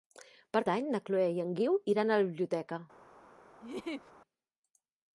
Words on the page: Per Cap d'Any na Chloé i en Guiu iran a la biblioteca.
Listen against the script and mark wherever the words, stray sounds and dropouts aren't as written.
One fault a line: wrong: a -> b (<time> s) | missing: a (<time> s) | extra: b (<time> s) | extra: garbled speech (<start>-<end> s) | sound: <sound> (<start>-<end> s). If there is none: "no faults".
missing: Cap (0.6 s)
sound: laugh (3.6-4.1 s)